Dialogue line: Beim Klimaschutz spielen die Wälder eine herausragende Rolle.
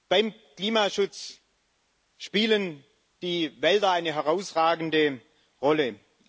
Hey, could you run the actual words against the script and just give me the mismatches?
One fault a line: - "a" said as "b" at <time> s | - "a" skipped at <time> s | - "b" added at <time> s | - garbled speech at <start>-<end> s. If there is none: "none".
none